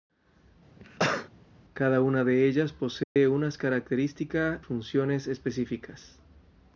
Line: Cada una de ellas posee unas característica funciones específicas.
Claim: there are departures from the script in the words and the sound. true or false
true